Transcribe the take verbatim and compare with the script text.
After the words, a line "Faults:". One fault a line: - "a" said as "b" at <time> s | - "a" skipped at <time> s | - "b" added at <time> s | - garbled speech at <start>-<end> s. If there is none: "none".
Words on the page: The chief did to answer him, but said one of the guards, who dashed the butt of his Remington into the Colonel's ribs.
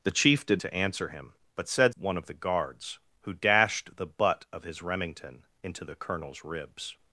The chief did to answer him, but said one of the guards, who dashed the butt of his Remington into the Colonel's ribs.
Faults:
none